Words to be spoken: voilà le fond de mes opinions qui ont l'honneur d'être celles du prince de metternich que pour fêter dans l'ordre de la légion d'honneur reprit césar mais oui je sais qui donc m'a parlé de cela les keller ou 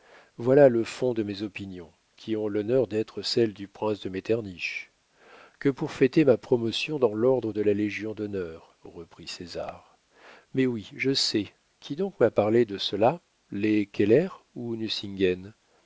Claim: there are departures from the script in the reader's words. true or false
true